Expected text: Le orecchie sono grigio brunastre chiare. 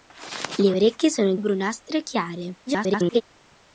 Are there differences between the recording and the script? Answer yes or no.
yes